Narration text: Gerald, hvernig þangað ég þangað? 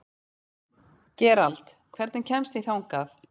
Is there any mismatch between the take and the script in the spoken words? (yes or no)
yes